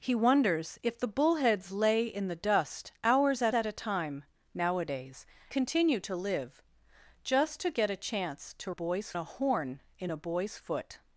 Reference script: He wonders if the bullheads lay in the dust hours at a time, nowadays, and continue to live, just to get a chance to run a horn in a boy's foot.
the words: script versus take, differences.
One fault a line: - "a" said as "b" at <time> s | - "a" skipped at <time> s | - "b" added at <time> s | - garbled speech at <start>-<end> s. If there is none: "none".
- "at" added at 3.5 s
- "and" skipped at 5.3 s
- "run" said as "boy's" at 8.7 s